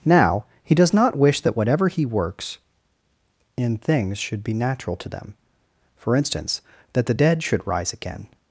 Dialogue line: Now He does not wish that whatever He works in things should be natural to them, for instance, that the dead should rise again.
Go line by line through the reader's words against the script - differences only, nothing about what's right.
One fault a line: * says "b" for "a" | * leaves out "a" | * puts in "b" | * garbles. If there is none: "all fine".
all fine